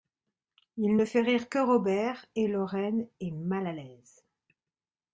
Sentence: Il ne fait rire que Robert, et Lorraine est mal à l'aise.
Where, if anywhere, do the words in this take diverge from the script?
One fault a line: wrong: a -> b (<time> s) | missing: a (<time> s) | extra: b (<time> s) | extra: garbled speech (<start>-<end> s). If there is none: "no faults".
no faults